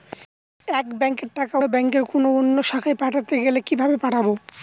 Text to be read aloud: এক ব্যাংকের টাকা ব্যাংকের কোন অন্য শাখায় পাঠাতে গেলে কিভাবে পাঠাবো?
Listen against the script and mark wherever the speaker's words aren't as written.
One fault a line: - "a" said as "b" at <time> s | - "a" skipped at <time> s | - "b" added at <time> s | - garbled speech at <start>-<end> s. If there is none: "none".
none